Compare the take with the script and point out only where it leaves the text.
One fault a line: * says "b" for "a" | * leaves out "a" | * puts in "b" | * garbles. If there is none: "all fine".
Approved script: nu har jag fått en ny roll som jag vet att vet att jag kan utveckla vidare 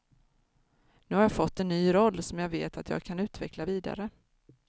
* leaves out "vet att"